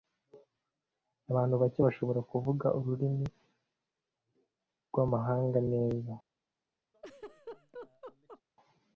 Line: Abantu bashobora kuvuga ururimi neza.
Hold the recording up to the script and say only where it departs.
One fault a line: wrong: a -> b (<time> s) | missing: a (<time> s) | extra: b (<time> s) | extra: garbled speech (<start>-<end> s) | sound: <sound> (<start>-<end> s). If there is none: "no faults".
extra: bake (1.6 s)
extra: rwamahanga (4.9 s)
sound: laugh (6.9-8.4 s)